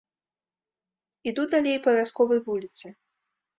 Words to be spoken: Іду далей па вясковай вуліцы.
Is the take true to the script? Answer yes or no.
yes